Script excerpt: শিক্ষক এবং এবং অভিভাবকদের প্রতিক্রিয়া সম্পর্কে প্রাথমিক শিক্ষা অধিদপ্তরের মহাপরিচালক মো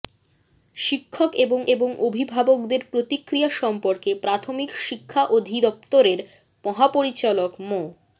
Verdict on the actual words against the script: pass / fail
pass